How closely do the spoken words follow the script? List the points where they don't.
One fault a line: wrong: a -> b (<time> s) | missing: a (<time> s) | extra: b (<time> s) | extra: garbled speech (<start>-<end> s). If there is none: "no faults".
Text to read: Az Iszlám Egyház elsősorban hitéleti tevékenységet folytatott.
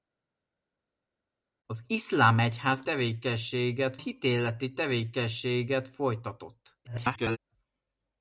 wrong: elsősorban -> tevékenységet (2.8 s)
extra: garbled speech (6.8-7.4 s)